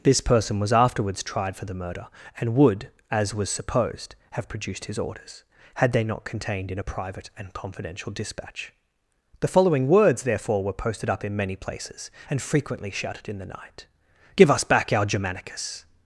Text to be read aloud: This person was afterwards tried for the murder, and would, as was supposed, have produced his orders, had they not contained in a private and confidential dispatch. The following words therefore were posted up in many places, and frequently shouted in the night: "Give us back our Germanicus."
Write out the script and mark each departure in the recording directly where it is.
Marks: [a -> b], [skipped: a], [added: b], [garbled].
This person was afterwards tried for the murder, and would, as was supposed, have produced his orders, had they not contained in a private and confidential dispatch. The following words therefore were posted up in many places, and frequently shouted in the night: "Give us back our Germanicus."